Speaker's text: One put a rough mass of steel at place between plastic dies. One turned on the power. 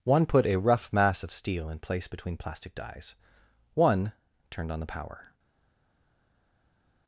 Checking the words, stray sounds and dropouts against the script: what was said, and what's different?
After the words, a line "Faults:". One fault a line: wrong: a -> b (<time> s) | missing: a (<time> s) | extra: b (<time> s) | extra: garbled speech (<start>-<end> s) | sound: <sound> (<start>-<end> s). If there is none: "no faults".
One put a rough mass of steel in place between plastic dies. One turned on the power.
Faults:
wrong: at -> in (1.7 s)